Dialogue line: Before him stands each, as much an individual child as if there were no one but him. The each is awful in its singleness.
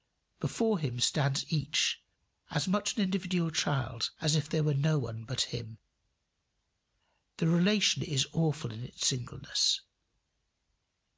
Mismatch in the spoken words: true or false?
true